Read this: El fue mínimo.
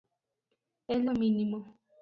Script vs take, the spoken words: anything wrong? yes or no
no